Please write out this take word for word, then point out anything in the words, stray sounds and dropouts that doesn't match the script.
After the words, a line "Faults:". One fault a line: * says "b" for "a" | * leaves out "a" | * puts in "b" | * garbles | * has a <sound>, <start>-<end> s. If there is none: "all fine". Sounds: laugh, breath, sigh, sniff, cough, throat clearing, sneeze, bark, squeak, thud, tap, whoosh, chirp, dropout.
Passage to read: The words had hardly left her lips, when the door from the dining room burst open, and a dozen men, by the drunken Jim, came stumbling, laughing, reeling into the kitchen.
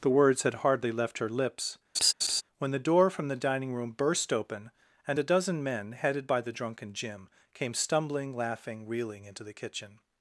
The words had hardly left her lips, when the door from the dining room burst open, and a dozen men, headed by the drunken Jim, came stumbling, laughing, reeling into the kitchen.
Faults:
* has a laugh, 1.9-2.4 s
* puts in "headed"